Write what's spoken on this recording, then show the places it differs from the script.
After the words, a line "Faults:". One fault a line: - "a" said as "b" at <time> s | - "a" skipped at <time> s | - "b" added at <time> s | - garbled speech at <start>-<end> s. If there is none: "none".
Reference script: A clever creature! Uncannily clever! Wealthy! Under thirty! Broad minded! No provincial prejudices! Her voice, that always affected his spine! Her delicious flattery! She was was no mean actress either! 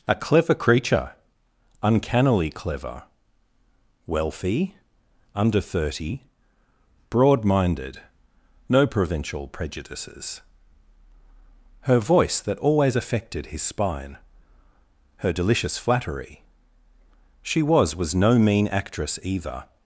A clever creature! Uncannily clever! Wealthy! Under thirty! Broad minded! No provincial prejudices! Her voice, that always affected his spine! Her delicious flattery! She was was no mean actress either!
Faults:
none